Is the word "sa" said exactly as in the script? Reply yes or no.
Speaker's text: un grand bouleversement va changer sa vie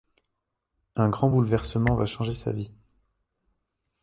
yes